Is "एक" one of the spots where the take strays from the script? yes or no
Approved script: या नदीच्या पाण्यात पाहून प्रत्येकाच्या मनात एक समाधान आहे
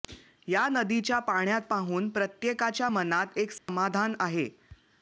no